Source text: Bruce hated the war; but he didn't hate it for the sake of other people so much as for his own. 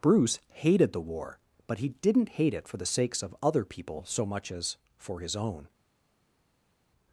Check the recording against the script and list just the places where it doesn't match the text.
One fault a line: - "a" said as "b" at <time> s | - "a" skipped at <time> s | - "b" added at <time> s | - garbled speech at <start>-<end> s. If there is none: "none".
- "sake" said as "sakes" at 2.9 s